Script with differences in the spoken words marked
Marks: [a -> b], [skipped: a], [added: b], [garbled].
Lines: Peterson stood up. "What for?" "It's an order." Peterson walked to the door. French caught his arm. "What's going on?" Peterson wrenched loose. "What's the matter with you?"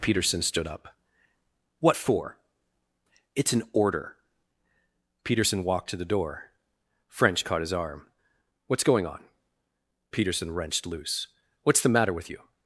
Peterson stood up. "What for?" "It's an order." Peterson walked to the door. French caught his arm. "What's going on?" Peterson wrenched loose. "What's the matter with you?"